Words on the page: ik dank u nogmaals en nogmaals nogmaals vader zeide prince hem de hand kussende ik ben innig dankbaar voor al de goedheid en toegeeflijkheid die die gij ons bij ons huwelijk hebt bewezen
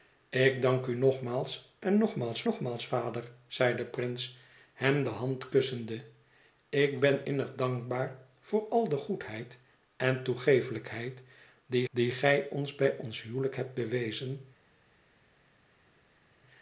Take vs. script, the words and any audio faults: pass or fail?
pass